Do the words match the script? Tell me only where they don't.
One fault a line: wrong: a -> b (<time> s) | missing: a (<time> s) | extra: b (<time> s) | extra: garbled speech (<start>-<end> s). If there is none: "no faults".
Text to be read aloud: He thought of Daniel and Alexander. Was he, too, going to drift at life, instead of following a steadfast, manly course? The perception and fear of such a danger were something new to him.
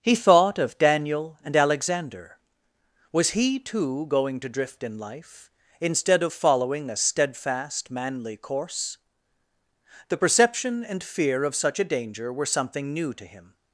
wrong: at -> in (4.8 s)